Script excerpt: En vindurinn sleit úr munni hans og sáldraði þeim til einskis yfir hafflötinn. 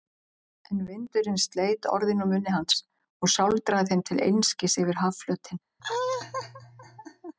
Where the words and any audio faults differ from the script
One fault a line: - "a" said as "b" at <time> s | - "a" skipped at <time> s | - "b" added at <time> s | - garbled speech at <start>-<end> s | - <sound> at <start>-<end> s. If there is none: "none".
- "orðin" added at 2.0 s
- laugh at 5.8-7.3 s